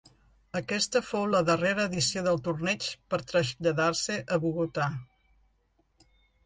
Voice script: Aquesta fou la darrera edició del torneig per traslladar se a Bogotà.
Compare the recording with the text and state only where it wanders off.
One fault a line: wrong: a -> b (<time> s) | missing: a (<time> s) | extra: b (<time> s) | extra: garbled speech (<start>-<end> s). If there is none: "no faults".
no faults